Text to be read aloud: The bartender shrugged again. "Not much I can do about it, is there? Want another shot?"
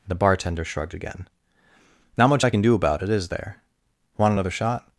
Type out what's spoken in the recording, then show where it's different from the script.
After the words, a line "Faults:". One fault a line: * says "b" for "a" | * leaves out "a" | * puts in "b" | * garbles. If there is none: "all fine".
The bartender shrugged again. "Not much I can do about it, is there? Want another shot?"
Faults:
all fine